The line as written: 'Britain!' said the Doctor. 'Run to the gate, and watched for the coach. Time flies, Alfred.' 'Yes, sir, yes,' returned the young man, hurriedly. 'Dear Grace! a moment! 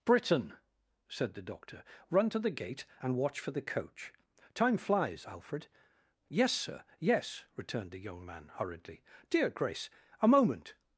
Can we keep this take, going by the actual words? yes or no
no